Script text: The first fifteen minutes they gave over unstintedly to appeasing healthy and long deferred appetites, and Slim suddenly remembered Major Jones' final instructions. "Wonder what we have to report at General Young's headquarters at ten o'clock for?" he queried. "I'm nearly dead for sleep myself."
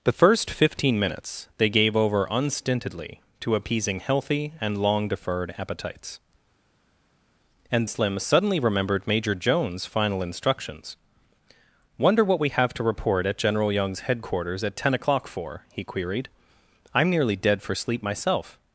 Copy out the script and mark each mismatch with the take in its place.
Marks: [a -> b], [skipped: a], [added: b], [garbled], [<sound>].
The first fifteen minutes they gave over unstintedly to appeasing healthy and long deferred appetites, and Slim suddenly remembered Major Jones' final instructions. "Wonder what we have to report at General Young's headquarters at ten o'clock for?" he queried. "I'm nearly dead for sleep myself."